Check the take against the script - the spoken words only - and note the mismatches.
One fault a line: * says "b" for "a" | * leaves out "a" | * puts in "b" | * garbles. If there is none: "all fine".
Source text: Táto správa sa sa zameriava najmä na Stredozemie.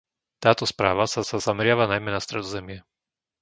all fine